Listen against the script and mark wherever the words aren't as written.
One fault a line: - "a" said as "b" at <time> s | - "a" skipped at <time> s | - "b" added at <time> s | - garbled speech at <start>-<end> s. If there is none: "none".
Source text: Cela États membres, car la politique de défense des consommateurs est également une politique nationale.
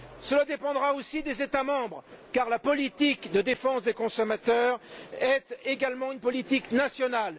- "dépendra aussi des" added at 0.5 s